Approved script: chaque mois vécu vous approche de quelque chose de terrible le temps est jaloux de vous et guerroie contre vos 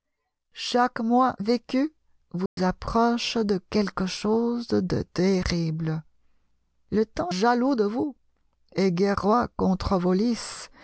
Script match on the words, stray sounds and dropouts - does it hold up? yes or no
no